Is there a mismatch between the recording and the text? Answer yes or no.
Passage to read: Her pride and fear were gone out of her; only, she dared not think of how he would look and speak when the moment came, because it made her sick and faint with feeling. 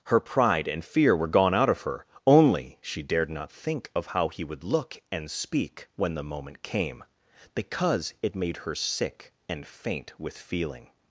no